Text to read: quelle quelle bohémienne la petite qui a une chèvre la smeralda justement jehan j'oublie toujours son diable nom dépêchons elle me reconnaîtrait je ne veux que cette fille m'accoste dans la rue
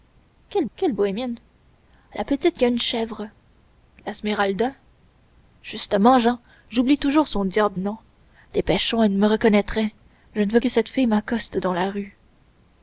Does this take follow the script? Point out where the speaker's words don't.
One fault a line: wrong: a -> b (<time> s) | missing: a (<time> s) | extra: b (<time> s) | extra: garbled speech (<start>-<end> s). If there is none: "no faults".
no faults